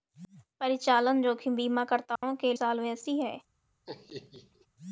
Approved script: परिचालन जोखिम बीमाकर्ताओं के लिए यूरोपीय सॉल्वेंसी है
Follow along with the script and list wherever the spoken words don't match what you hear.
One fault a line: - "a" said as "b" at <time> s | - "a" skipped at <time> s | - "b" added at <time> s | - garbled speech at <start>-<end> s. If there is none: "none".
- "लिए यूरोपीय" skipped at 2.5 s